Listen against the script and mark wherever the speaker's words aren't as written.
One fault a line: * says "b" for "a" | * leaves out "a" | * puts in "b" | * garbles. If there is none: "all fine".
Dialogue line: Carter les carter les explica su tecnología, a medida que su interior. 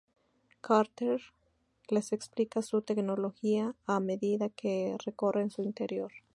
* leaves out "carter les"
* puts in "recorren"